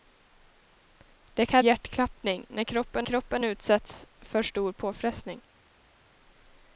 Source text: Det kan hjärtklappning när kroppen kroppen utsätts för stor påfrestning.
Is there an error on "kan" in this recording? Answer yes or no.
no